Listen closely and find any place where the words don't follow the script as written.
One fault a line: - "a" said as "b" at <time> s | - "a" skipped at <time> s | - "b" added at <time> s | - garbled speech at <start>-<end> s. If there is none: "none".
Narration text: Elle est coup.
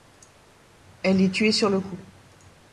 - "tuée sur le" added at 1.3 s